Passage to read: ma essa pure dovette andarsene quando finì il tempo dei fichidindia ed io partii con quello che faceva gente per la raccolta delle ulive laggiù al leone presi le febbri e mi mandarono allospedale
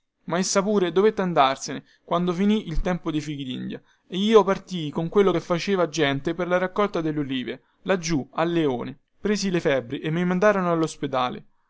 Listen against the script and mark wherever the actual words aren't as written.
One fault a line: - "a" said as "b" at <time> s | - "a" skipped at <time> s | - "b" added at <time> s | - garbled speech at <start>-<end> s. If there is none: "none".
none